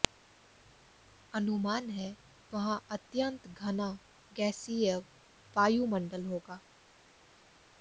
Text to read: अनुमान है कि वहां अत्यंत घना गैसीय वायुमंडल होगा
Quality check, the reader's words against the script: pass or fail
fail